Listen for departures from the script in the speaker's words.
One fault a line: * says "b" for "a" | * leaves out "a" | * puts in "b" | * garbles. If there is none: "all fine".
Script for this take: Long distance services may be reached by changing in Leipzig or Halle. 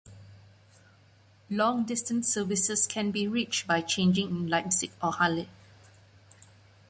* says "can" for "may"